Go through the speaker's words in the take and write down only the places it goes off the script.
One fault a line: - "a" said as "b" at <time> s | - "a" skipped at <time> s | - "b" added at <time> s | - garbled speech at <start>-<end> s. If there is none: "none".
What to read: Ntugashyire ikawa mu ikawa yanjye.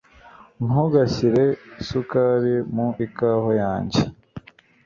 - "ikawa" said as "isukari" at 1.8 s